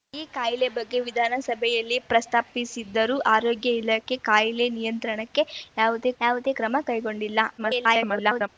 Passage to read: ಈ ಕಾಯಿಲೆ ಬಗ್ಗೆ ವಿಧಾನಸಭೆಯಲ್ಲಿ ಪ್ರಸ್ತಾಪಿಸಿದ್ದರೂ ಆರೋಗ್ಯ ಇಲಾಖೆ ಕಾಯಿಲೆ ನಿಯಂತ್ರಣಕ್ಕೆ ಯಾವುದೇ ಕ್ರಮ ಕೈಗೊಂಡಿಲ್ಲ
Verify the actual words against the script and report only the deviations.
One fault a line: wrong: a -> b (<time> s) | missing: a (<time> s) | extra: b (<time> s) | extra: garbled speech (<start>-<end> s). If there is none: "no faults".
extra: ಯಾವುದೇ (6.2 s)
extra: garbled speech (7.6-8.5 s)